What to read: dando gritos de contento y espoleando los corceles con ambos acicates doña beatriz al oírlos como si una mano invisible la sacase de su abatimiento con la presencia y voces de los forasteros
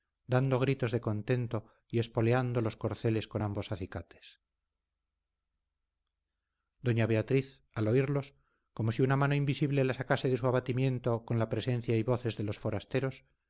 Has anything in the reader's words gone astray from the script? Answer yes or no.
no